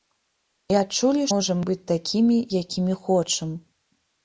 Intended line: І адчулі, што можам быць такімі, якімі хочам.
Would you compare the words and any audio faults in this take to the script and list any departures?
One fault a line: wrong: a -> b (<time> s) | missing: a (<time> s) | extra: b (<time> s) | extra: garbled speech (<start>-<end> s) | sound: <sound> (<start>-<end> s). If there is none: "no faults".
missing: што (1.3 s)